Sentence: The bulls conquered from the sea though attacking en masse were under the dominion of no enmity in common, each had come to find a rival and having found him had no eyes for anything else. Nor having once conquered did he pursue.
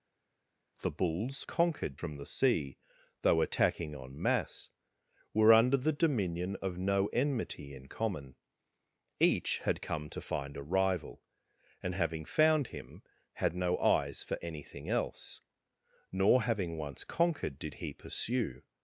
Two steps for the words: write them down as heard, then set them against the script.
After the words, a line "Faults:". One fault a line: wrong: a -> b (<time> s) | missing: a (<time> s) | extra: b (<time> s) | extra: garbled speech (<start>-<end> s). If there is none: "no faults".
The bulls conquered from the sea though attacking en masse were under the dominion of no enmity in common, each had come to find a rival and having found him had no eyes for anything else. Nor having once conquered did he pursue.
Faults:
no faults